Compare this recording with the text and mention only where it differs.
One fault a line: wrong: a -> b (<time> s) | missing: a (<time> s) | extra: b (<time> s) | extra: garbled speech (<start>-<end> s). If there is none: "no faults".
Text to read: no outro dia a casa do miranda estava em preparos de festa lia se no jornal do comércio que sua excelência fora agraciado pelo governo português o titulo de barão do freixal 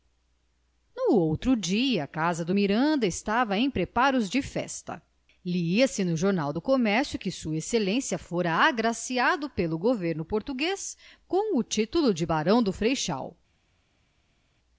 extra: com (11.3 s)